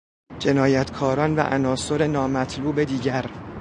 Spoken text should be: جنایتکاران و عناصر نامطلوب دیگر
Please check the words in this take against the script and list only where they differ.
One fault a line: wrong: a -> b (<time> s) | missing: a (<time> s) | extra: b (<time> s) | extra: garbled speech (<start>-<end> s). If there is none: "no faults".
no faults